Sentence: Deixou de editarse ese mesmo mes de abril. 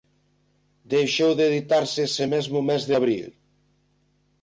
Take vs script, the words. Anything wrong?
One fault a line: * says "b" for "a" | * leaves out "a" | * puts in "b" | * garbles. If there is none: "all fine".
all fine